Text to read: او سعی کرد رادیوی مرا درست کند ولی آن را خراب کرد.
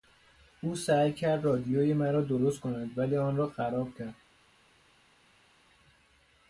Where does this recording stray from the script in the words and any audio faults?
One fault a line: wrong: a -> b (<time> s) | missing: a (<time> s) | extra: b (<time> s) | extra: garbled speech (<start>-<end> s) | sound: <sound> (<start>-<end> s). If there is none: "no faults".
no faults